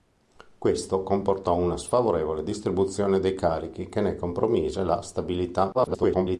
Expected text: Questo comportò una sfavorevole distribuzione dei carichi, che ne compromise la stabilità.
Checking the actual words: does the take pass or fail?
fail